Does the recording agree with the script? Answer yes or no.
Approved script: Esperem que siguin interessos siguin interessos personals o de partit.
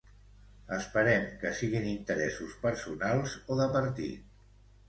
no